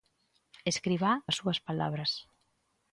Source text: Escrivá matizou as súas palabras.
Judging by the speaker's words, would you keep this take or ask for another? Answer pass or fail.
fail